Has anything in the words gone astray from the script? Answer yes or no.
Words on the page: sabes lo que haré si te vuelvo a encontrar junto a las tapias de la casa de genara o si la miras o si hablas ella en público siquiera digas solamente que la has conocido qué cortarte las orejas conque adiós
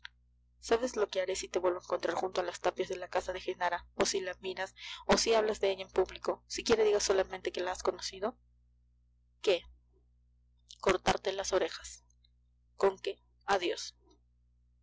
yes